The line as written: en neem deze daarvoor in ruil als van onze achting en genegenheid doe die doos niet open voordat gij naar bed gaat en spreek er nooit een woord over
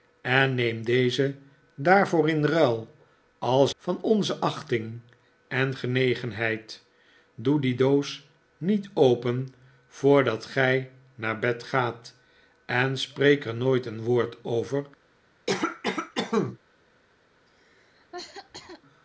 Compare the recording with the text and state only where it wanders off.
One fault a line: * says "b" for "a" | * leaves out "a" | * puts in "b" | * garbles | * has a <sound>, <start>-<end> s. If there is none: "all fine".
* has a cough, 15.5-16.6 s
* has a cough, 17.5-18.8 s